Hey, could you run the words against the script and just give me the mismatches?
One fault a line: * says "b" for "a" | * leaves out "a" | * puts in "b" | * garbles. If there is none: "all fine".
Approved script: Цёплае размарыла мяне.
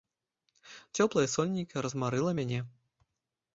* puts in "сонейка"